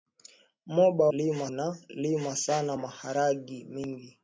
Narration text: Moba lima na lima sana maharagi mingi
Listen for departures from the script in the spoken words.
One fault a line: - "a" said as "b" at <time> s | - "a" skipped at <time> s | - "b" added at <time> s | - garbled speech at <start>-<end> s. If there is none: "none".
none